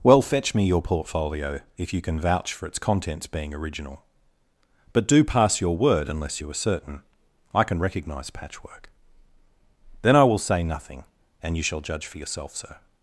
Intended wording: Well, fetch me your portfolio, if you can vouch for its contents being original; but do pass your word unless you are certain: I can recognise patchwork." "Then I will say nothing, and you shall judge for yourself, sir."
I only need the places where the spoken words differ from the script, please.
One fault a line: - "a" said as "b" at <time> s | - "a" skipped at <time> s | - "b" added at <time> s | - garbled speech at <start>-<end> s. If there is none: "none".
none